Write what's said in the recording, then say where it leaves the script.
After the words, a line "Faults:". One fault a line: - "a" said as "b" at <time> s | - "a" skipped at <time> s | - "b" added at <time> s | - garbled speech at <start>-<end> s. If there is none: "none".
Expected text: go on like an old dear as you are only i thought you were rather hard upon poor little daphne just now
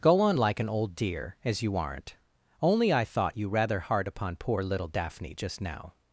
go on like an old dear as you aren't only i thought you rather hard upon poor little daphne just now
Faults:
- "are" said as "aren't" at 1.7 s
- "were" skipped at 3.5 s